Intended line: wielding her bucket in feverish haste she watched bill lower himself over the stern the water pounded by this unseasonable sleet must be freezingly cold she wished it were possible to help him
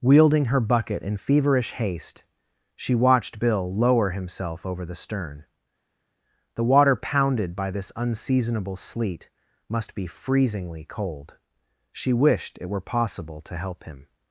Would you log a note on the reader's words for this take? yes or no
no